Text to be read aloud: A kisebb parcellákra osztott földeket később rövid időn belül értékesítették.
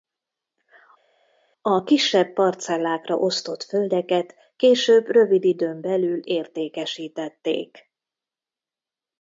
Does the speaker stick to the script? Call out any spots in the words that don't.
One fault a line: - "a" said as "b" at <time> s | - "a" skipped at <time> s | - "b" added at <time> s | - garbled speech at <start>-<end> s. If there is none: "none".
none